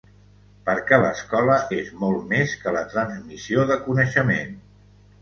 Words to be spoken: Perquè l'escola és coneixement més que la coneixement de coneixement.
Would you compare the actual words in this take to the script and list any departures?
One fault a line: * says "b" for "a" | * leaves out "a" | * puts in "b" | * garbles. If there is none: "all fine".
* says "molt" for "coneixement"
* says "transmissió" for "coneixement"